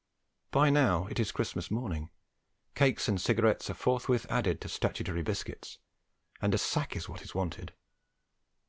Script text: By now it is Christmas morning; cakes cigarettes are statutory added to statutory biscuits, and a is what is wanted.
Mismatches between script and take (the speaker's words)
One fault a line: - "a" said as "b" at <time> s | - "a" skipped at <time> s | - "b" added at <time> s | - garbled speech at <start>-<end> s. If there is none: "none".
- "and" added at 3.1 s
- "statutory" said as "forthwith" at 3.8 s
- "sack" added at 6.5 s